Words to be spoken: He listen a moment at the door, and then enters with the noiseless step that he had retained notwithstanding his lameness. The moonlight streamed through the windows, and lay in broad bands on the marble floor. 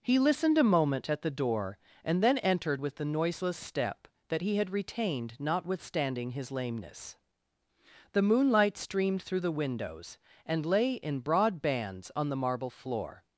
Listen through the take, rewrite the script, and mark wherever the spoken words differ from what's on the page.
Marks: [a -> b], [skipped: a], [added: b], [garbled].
He [listen -> listened] a moment at the door, and then [enters -> entered] with the noiseless step that he had retained notwithstanding his lameness. The moonlight streamed through the windows, and lay in broad bands on the marble floor.